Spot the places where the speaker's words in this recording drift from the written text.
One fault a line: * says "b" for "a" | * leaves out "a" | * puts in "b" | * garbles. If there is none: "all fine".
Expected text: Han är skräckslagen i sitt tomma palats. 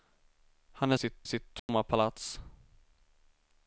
* says "sitt" for "skräckslagen"